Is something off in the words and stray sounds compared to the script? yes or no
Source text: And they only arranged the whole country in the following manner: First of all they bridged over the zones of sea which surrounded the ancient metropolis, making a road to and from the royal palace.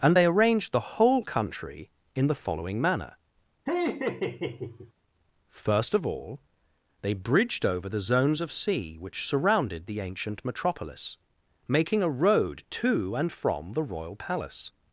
yes